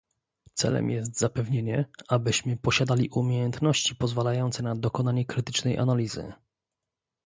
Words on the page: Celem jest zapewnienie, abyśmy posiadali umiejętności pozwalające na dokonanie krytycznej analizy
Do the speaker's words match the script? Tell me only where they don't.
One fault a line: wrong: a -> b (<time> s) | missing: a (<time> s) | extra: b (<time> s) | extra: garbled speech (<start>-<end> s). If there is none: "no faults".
no faults